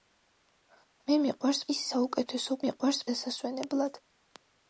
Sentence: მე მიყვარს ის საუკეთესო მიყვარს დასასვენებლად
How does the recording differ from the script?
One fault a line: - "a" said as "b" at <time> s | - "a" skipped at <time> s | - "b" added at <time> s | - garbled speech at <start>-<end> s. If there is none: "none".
none